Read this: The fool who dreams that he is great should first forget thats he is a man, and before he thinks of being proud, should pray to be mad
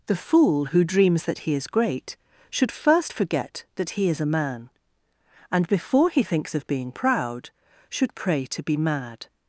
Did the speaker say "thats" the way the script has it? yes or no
no